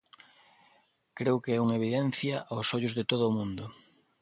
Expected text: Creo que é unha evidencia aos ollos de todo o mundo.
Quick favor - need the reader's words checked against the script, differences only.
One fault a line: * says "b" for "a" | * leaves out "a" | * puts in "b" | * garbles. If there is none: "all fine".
all fine